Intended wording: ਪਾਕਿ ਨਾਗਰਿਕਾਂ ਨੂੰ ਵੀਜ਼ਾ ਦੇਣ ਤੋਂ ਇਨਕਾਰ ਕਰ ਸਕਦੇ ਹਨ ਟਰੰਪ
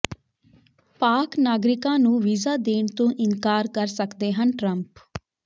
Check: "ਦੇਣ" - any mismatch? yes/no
no